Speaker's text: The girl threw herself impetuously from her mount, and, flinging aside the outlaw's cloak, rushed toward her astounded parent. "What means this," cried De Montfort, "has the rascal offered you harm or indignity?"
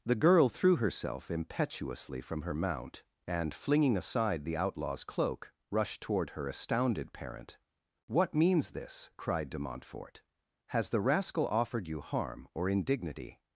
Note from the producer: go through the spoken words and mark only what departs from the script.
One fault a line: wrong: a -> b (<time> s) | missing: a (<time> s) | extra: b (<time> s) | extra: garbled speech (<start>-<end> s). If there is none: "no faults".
no faults